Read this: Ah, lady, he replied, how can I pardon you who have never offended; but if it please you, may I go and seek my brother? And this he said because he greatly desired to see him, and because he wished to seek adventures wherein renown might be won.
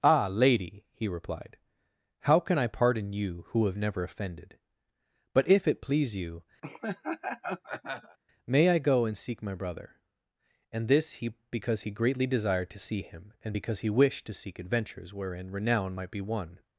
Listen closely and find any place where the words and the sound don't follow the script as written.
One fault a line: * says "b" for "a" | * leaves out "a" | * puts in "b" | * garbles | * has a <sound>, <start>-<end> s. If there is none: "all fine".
* has a laugh, 6.6-8.2 s
* leaves out "said"